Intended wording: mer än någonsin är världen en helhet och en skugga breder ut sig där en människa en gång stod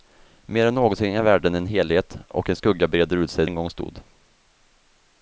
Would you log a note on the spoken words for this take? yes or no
yes